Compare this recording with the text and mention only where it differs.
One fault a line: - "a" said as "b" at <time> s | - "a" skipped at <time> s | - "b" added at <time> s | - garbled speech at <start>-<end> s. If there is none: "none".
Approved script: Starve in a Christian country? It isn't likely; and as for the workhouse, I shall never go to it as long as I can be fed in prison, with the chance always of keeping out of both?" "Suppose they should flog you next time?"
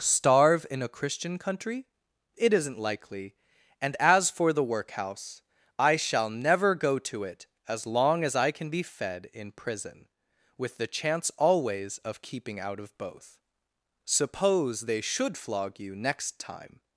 none